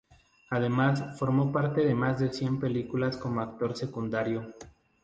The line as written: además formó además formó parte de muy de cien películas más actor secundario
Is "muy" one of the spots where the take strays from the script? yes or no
yes